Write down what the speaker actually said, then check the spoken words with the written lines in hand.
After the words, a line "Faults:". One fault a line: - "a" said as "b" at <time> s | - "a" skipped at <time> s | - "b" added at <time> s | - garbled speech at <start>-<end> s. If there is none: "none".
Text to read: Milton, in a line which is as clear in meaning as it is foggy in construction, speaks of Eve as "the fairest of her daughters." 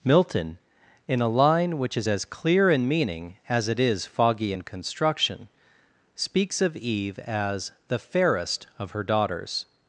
Milton, in a line which is as clear in meaning as it is foggy in construction, speaks of Eve as "the fairest of her daughters."
Faults:
none